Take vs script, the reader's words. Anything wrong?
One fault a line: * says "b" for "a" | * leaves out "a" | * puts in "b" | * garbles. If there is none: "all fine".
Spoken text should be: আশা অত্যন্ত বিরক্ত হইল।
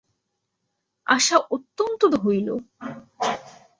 * leaves out "বিরক্ত"